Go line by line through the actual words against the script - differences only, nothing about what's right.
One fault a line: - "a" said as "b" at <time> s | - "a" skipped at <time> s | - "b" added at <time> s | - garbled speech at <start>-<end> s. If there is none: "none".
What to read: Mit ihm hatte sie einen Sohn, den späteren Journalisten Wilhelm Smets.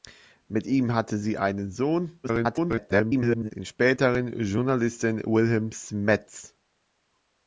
- garbled speech at 2.2-3.5 s